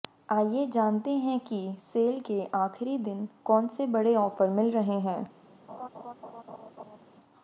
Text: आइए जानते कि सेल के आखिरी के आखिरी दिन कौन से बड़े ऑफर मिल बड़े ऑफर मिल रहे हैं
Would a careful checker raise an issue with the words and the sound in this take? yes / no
yes